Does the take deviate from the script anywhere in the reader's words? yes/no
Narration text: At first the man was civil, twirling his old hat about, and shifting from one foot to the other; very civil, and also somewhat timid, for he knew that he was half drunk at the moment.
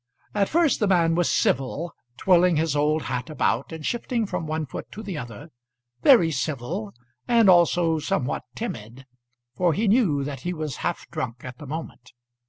no